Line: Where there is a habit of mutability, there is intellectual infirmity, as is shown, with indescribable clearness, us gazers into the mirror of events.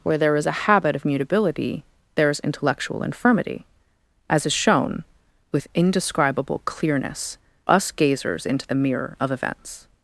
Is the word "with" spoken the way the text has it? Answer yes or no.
yes